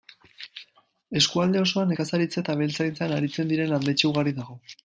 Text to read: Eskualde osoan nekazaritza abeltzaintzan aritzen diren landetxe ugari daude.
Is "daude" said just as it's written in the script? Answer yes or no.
no